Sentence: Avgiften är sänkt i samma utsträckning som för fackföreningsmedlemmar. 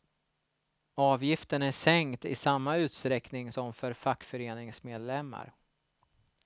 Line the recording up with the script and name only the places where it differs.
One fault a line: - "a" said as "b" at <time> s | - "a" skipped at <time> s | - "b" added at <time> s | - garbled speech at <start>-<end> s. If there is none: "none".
none